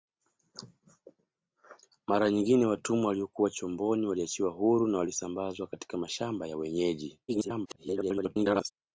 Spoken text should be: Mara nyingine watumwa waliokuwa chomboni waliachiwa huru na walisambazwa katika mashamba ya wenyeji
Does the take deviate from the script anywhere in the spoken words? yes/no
yes